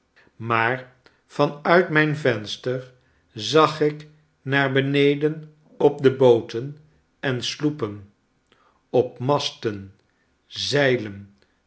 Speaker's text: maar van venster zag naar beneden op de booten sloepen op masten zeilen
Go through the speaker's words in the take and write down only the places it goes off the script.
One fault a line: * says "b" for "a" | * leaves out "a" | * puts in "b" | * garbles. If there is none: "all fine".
* puts in "uit mijn"
* puts in "ik"
* puts in "en"